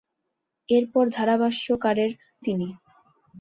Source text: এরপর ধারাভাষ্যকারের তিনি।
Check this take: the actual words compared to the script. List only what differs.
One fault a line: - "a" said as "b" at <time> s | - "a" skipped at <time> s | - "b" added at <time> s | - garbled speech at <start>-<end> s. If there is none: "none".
none